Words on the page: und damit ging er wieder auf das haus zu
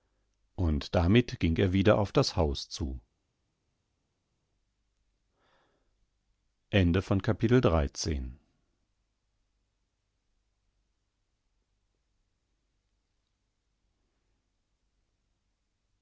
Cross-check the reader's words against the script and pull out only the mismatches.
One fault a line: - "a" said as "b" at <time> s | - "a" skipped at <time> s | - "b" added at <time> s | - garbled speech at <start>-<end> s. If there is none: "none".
none